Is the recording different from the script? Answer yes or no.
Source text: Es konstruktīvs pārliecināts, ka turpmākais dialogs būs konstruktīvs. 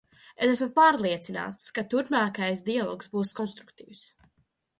yes